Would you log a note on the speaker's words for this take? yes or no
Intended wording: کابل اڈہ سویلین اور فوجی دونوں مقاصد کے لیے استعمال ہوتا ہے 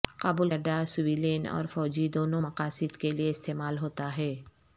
no